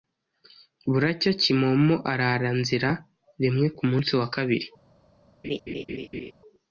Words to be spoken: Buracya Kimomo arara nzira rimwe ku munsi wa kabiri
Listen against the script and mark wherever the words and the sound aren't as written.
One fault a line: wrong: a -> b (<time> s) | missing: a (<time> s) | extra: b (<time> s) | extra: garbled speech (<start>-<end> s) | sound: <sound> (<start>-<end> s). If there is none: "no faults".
sound: laugh (5.4-6.3 s)